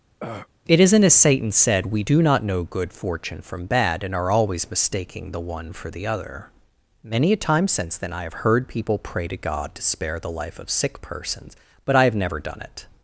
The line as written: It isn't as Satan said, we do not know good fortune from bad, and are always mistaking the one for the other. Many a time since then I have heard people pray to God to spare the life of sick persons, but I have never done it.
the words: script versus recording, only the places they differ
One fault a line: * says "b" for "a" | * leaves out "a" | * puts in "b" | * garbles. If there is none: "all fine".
all fine